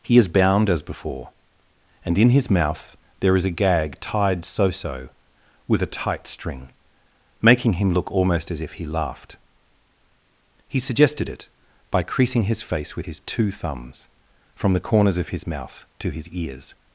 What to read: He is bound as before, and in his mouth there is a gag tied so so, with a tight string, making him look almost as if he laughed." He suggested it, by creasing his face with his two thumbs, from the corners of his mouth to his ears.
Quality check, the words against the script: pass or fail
pass